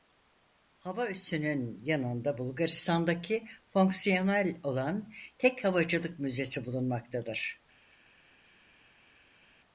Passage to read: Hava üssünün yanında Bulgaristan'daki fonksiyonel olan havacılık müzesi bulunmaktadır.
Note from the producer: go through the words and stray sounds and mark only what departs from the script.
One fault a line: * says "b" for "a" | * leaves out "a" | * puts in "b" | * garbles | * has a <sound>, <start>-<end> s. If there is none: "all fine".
* puts in "tek"